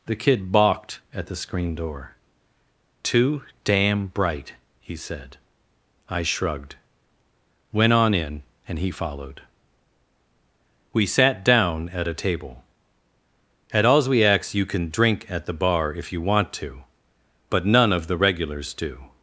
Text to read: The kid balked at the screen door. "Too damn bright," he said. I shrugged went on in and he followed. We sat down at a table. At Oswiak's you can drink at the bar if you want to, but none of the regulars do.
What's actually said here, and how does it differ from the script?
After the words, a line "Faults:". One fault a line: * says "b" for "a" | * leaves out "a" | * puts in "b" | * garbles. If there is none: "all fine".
The kid balked at the screen door. "Too damn bright," he said. I shrugged went on in and he followed. We sat down at a table. At Oswiak's you can drink at the bar if you want to, but none of the regulars do.
Faults:
all fine